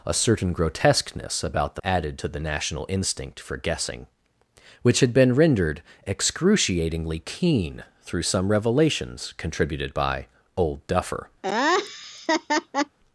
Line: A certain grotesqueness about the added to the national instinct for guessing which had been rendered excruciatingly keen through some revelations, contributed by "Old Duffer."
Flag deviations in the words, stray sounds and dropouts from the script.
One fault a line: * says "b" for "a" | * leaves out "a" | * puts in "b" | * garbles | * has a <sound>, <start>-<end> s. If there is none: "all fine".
* has a laugh, 11.4-13.0 s